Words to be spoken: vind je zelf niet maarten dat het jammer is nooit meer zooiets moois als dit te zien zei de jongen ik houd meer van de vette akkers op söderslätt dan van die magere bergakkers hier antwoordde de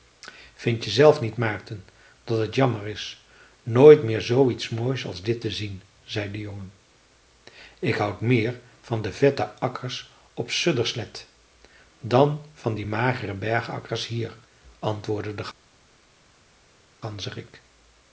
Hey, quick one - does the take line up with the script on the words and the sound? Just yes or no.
yes